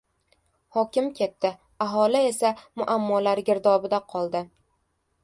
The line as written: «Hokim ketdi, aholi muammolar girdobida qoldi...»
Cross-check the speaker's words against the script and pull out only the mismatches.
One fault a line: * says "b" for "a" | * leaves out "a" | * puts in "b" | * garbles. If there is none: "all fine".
* puts in "esa"